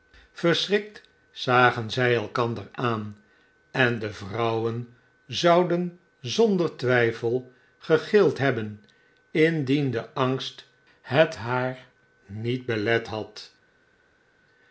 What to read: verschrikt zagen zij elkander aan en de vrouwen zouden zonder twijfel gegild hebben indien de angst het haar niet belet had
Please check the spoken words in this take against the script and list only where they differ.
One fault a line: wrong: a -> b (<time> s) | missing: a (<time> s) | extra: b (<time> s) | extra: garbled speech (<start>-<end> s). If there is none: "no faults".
no faults